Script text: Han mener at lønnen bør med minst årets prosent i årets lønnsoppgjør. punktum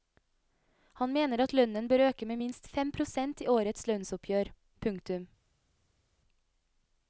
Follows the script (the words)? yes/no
no